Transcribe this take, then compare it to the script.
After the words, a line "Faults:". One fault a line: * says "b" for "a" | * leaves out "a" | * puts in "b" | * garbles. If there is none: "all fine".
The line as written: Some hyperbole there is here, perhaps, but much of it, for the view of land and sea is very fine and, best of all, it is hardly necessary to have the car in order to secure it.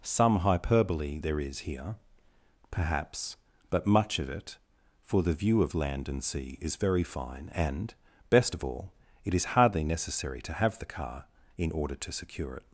Some hyperbole there is here, perhaps, but much of it, for the view of land and sea is very fine and, best of all, it is hardly necessary to have the car in order to secure it.
Faults:
all fine